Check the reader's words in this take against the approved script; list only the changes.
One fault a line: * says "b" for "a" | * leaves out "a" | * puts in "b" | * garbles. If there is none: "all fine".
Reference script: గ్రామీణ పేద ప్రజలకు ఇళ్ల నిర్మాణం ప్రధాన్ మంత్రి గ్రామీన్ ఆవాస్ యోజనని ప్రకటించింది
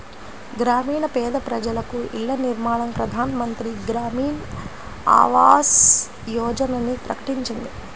all fine